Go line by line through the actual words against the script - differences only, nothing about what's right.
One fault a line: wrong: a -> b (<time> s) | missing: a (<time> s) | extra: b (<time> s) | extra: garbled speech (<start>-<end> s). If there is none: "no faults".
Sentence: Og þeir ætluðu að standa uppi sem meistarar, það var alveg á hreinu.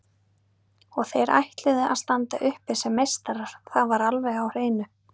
no faults